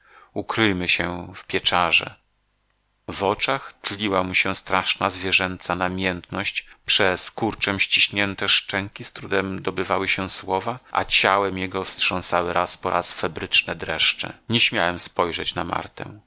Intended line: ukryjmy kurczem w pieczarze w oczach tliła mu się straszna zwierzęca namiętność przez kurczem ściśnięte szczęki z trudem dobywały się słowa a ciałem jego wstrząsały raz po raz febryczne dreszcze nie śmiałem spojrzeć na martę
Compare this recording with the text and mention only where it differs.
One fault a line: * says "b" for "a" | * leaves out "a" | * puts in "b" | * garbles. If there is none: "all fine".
* says "się" for "kurczem"